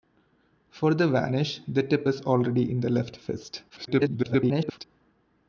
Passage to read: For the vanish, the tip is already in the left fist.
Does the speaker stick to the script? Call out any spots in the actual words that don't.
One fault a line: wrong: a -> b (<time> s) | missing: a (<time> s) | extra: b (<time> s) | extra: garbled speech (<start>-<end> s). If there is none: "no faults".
extra: garbled speech (3.7-4.8 s)